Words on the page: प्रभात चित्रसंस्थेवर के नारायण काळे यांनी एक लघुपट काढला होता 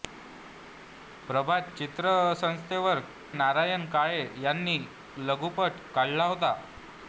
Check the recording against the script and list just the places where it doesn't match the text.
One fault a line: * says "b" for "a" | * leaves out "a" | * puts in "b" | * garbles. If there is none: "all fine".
* leaves out "के"
* leaves out "एक"